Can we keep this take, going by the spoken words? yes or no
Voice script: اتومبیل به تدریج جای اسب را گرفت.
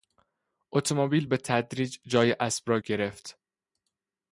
yes